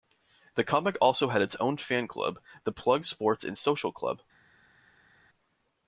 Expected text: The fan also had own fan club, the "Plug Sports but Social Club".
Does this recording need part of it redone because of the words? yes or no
yes